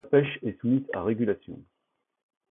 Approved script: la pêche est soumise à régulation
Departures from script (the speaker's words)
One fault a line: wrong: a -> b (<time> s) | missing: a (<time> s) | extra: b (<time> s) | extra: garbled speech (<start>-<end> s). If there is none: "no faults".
no faults